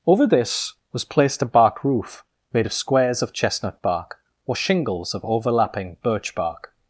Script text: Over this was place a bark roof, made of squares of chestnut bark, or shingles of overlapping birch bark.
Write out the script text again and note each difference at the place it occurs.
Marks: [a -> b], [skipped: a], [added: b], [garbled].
Over this was [place -> placed] a bark roof, made of squares of chestnut bark, or shingles of overlapping birch bark.